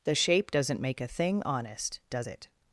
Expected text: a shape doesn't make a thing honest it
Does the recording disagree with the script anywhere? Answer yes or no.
yes